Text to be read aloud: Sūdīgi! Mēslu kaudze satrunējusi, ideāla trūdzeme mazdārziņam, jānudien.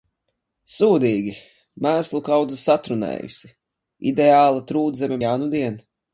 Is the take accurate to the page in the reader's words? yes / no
no